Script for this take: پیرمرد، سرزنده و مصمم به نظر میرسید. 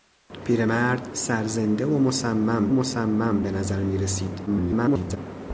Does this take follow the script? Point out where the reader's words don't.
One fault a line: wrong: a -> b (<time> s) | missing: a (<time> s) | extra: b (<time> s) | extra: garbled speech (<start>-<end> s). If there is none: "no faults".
extra: مصمم (2.7 s)
extra: garbled speech (4.5-5.2 s)